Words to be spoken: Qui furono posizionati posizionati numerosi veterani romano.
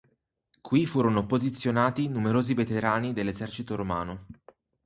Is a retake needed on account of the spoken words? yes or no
yes